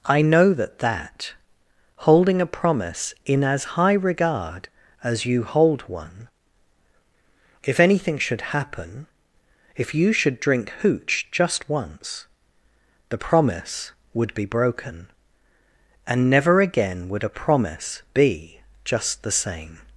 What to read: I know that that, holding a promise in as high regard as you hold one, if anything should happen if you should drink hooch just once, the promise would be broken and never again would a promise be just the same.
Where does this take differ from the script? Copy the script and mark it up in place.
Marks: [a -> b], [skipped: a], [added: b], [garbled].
I know that that, holding a promise in as high regard as you hold one, if anything should happen if you should drink hooch just once, the promise would be broken and never again would a promise be just the same.